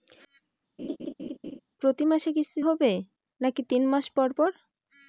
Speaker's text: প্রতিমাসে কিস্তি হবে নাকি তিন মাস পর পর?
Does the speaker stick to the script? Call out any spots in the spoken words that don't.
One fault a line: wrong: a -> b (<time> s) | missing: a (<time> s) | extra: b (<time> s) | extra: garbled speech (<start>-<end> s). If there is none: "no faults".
no faults